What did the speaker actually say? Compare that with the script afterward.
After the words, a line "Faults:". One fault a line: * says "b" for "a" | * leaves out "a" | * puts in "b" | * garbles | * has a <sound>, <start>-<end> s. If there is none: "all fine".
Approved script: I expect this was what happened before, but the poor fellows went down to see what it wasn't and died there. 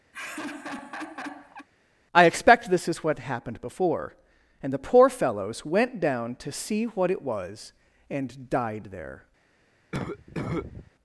I expect this is what happened before, and the poor fellows went down to see what it was and died there.
Faults:
* has a laugh, 0.1-1.7 s
* says "is" for "was"
* says "and" for "but"
* says "was" for "wasn't"
* has a cough, 9.9-10.9 s